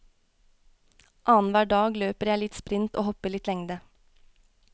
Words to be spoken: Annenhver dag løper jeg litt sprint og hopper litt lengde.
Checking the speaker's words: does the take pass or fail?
pass